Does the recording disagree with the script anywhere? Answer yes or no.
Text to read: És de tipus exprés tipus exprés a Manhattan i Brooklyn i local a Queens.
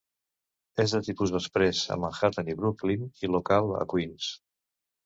yes